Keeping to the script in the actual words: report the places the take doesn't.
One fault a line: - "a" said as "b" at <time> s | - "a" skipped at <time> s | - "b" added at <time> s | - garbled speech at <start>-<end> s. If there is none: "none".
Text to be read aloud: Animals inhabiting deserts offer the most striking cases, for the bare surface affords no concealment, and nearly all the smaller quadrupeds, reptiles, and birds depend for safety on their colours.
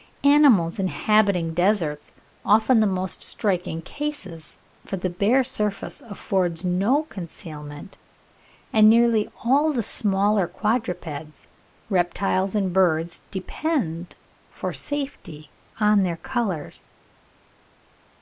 none